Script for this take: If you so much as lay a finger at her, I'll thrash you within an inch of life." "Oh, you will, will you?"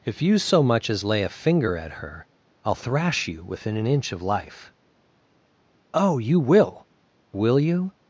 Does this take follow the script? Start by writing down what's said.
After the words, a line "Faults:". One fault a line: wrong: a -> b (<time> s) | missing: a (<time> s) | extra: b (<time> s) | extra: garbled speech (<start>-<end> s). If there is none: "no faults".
If you so much as lay a finger at her, I'll thrash you within an inch of life." "Oh, you will, will you?"
Faults:
no faults